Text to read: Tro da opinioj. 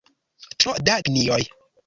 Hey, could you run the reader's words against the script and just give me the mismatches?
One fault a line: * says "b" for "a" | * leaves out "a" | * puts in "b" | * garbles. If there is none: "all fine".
all fine